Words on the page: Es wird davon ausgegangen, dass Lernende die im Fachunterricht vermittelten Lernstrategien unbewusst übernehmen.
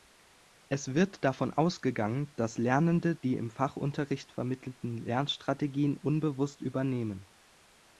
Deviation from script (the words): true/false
false